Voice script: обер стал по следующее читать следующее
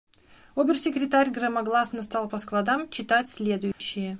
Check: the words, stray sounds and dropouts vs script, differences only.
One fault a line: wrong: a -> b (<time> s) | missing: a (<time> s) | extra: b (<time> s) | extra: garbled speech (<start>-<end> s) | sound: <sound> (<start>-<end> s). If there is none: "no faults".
extra: секретарь громогласно (0.8 s)
wrong: следующее -> складам (2.4 s)
sound: dropout (3.7-3.8 s)